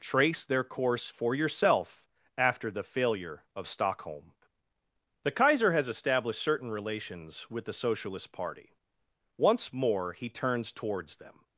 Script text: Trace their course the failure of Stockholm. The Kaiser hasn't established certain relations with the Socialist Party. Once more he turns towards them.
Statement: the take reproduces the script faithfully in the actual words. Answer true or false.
false